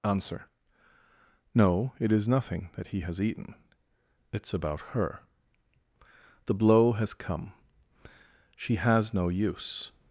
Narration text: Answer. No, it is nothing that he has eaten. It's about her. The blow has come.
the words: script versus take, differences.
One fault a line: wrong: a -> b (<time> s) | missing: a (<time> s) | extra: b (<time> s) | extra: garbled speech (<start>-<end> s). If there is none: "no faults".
extra: She has no use (8.6 s)